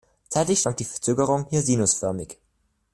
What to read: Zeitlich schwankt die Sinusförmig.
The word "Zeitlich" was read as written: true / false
true